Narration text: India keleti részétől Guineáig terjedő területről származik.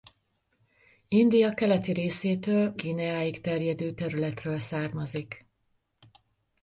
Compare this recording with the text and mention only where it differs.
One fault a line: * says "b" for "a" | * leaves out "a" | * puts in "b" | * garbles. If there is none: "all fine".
all fine